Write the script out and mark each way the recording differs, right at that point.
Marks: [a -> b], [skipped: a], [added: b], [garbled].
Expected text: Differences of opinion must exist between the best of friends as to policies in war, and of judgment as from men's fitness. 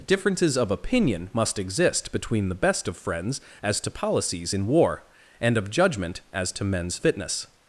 Differences of opinion must exist between the best of friends as to policies in war, and of judgment as [from -> to] men's fitness.